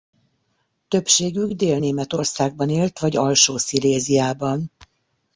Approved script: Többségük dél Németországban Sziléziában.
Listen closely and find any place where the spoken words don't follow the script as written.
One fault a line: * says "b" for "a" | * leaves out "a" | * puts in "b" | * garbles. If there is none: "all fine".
* puts in "élt vagy alsó"